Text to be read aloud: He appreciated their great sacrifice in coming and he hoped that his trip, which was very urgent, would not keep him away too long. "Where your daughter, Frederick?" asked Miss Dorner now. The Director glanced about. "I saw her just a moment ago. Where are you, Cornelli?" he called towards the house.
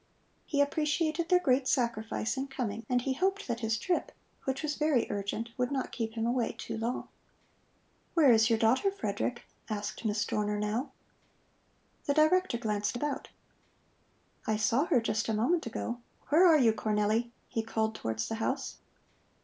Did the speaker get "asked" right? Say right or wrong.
right